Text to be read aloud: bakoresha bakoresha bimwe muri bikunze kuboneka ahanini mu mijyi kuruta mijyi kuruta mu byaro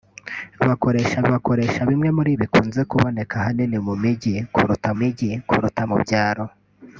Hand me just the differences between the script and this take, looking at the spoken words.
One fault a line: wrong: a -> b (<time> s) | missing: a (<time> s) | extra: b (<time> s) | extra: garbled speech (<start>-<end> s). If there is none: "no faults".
no faults